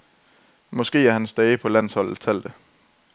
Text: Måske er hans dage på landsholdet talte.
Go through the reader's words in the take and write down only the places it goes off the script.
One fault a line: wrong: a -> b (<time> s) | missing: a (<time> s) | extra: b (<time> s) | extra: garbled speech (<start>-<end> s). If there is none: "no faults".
no faults